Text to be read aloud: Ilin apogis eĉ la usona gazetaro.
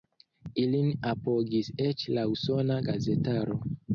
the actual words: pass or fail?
pass